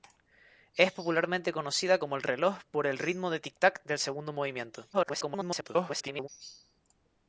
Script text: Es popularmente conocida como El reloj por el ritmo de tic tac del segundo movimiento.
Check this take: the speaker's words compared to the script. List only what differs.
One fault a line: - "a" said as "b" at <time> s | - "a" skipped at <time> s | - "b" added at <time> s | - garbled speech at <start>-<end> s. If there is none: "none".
- garbled speech at 4.9-6.3 s